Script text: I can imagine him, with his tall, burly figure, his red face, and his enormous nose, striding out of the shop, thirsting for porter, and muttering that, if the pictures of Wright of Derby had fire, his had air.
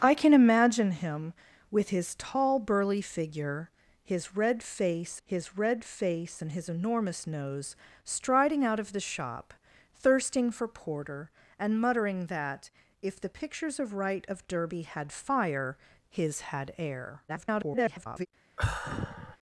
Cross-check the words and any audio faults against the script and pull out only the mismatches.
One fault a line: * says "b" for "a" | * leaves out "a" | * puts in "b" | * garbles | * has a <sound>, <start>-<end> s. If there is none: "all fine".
* puts in "his red face"
* garbles
* has a sigh, 18.6-19.4 s